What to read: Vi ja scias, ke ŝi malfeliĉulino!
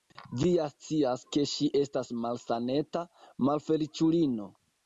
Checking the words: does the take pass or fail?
fail